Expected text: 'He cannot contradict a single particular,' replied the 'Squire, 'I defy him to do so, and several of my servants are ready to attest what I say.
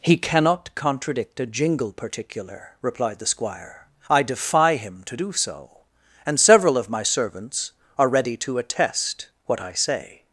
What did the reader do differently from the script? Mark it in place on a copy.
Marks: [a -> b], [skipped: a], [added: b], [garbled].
'He cannot contradict a [single -> jingle] particular,' replied the 'Squire, 'I defy him to do so, and several of my servants are ready to attest what I say.